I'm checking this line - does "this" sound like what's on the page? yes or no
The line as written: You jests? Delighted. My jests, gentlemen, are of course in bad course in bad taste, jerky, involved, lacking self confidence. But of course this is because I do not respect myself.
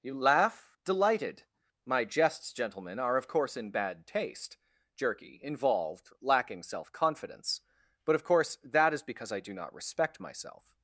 no